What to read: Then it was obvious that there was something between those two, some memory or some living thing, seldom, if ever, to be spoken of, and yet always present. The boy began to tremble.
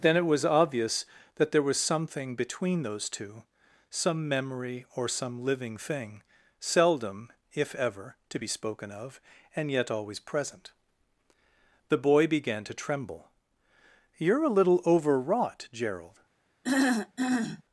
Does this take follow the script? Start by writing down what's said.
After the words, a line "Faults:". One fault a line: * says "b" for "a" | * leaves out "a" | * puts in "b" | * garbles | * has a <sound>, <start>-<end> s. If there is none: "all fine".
Then it was obvious that there was something between those two, some memory or some living thing, seldom, if ever, to be spoken of, and yet always present. The boy began to tremble. "You're a little overwrought, Gerald
Faults:
* puts in "You're a little overwrought Gerald"
* has a throat clearing, 16.6-17.6 s